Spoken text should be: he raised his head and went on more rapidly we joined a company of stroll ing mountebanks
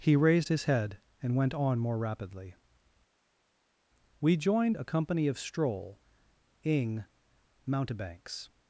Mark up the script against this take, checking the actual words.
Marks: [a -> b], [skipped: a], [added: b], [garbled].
he raised his head and went on more rapidly we joined a company of stroll ing mountebanks